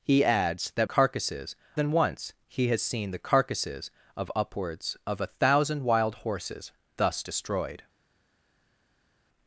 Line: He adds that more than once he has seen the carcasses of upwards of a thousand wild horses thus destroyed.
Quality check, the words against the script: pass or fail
fail